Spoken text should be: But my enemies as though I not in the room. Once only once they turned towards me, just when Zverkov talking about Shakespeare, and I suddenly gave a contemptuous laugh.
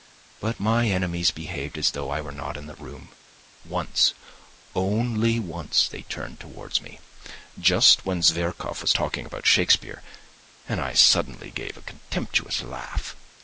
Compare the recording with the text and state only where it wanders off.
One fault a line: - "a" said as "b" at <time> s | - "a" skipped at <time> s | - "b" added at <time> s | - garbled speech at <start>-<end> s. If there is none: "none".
- "behaved" added at 1.3 s
- "were" added at 2.2 s
- "was" added at 8.8 s